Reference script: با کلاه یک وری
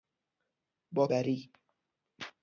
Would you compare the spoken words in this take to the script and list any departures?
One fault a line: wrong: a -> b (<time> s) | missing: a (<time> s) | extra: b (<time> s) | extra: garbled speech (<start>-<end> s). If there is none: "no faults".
missing: کلاه یک (1.1 s)